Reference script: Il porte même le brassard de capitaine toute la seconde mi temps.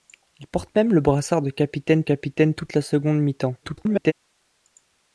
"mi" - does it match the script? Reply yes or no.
yes